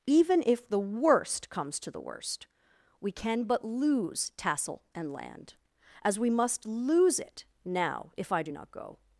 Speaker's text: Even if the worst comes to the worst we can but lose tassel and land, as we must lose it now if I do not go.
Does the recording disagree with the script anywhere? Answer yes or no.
no